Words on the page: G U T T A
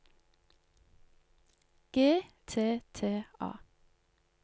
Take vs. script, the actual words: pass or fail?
fail